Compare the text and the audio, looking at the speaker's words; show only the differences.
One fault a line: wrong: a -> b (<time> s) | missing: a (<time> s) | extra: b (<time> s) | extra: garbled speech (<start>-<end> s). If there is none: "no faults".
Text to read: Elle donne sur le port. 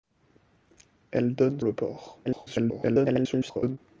missing: sur (1.6 s)
extra: garbled speech (2.2-3.8 s)